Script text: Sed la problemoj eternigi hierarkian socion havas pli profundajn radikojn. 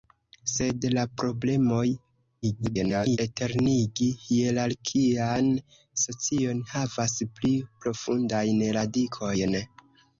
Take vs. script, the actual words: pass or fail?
fail